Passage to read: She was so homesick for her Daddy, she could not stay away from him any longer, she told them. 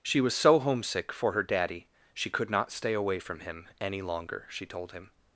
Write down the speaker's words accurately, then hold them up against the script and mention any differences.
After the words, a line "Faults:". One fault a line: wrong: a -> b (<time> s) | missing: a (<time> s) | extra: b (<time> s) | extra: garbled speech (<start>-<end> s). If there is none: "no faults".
She was so homesick for her Daddy, she could not stay away from him any longer, she told him.
Faults:
wrong: them -> him (4.9 s)